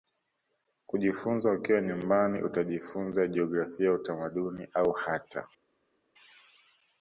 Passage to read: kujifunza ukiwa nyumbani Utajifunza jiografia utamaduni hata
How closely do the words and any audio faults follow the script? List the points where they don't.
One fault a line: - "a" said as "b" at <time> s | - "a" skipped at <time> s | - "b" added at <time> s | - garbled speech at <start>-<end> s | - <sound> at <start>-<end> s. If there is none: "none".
- "au" added at 4.7 s